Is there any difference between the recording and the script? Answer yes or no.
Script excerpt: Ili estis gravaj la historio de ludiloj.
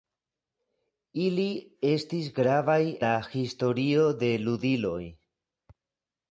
no